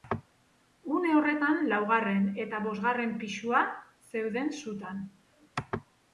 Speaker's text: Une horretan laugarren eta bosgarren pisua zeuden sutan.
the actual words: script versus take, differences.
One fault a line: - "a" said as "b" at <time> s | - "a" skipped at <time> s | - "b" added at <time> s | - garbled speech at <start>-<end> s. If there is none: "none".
none